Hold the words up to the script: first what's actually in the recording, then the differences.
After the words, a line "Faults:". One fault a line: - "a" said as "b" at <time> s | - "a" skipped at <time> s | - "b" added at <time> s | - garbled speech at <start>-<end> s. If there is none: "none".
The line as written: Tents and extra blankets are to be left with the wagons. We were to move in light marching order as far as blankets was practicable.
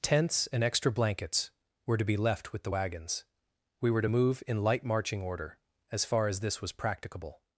Tents and extra blankets were to be left with the wagons. We were to move in light marching order as far as this was practicable.
Faults:
- "are" said as "were" at 1.9 s
- "blankets" said as "this" at 6.4 s